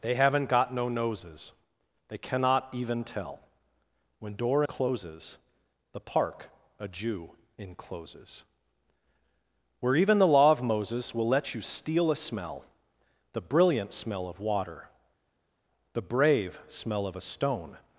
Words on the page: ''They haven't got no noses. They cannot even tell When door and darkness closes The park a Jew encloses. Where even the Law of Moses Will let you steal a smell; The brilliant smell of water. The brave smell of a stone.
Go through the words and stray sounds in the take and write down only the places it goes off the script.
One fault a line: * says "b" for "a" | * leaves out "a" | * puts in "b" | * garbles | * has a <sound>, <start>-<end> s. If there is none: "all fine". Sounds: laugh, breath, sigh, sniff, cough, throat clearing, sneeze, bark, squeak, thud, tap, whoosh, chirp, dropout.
* leaves out "and darkness"